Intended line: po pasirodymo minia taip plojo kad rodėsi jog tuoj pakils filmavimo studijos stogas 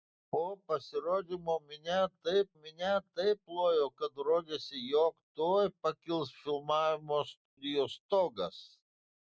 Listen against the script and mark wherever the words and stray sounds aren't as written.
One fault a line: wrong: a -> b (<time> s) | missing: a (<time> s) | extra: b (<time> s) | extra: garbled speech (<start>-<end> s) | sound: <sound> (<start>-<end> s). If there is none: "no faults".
extra: minia taip (2.6 s)
sound: dropout (7.5-7.6 s)